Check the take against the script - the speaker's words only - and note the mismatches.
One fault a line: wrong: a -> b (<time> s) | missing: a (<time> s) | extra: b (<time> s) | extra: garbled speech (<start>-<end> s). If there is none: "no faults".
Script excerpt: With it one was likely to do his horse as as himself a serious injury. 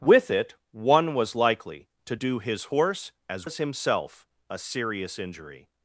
no faults